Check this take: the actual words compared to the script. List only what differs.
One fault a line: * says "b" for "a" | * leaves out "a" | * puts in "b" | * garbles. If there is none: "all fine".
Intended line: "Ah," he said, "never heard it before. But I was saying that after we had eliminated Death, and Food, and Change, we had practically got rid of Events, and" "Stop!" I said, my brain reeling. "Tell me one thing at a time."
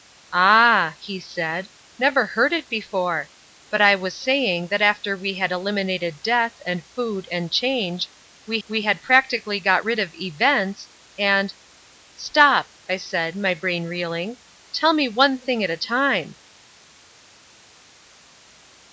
* puts in "we"